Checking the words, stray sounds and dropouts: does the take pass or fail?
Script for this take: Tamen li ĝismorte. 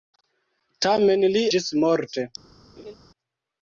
fail